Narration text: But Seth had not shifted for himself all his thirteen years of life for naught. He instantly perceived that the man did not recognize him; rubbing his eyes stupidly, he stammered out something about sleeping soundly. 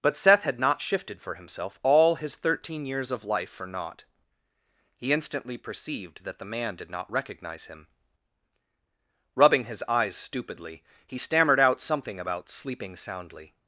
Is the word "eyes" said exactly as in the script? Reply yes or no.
yes